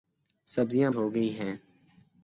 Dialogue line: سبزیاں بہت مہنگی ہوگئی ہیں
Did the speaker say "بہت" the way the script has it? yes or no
no